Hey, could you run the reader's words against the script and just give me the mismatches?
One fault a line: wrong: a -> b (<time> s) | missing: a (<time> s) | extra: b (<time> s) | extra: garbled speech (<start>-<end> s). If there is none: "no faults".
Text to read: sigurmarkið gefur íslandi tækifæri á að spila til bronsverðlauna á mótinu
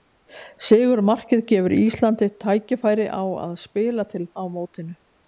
missing: bronsverðlauna (4.3 s)